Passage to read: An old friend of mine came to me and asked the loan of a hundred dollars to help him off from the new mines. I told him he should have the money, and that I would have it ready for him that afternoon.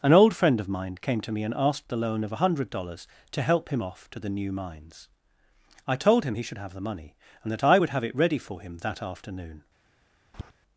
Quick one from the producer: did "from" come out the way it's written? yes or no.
no